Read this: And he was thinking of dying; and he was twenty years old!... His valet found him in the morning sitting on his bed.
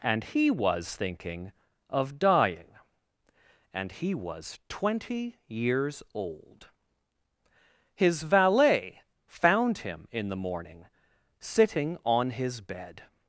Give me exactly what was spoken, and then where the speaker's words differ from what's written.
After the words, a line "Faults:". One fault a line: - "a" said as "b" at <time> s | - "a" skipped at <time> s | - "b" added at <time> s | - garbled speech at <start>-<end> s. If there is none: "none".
And he was thinking of dying; and he was twenty years old!... His valet found him in the morning sitting on his bed.
Faults:
none